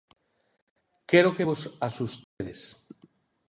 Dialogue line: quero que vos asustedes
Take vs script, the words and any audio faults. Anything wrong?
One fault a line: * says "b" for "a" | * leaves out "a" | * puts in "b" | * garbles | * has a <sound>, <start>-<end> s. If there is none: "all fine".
* has a dropout, 2.2-2.4 s